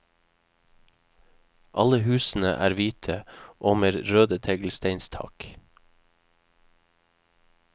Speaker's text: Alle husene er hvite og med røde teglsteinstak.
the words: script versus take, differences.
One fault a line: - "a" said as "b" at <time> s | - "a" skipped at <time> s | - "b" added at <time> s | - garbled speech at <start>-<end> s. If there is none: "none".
none